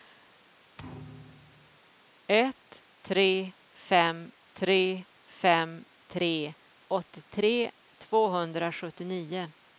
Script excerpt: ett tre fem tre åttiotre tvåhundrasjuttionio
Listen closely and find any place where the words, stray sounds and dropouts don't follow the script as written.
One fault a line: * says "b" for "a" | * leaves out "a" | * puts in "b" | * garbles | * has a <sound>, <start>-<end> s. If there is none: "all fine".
* has a thud, 0.8-1.8 s
* puts in "fem tre"